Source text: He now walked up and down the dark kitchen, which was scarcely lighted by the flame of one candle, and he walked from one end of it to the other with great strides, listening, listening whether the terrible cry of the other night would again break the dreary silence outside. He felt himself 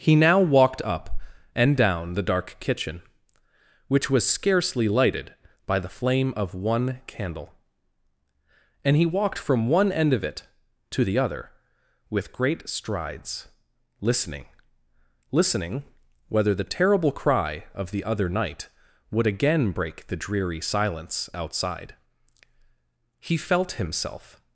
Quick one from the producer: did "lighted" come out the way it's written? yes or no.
yes